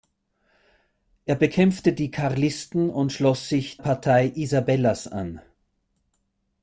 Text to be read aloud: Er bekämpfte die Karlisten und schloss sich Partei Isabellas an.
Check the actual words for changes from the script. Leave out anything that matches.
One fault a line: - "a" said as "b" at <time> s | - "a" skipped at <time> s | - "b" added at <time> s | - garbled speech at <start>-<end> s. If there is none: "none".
none